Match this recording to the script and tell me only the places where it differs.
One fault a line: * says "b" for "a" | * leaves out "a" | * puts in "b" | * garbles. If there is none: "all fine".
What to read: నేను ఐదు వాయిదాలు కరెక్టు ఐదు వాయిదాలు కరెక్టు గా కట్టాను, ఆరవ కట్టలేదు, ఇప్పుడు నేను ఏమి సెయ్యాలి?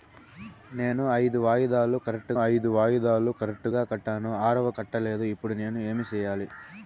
all fine